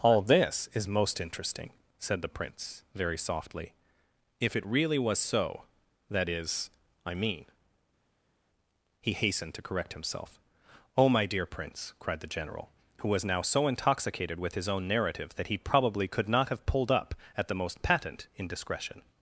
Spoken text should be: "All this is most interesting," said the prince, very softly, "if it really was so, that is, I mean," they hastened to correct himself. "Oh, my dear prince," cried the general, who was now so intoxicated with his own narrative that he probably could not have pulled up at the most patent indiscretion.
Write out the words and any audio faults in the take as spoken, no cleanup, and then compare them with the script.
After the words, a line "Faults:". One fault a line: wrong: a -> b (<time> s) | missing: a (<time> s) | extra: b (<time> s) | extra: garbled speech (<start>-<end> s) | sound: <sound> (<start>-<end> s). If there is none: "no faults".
"All this is most interesting," said the prince, very softly, "if it really was so, that is, I mean," he hastened to correct himself. "Oh, my dear prince," cried the general, who was now so intoxicated with his own narrative that he probably could not have pulled up at the most patent indiscretion.
Faults:
wrong: they -> he (9.0 s)